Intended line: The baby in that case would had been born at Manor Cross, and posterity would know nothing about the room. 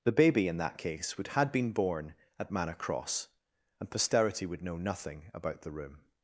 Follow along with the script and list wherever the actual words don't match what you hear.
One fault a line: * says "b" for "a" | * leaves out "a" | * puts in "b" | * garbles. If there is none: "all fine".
all fine